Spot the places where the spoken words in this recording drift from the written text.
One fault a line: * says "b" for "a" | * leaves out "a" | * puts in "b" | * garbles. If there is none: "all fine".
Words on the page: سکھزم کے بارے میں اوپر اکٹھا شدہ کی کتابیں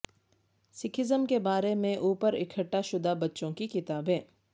* puts in "بچوں"